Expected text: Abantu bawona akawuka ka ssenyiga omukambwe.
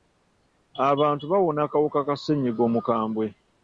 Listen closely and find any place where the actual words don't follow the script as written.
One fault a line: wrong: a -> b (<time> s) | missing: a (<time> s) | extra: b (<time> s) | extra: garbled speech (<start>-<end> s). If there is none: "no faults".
no faults